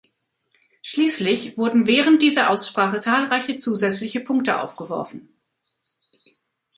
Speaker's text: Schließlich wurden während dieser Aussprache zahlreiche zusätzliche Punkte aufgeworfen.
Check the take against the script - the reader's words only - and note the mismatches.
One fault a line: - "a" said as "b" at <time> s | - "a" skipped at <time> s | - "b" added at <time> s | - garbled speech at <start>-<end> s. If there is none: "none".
none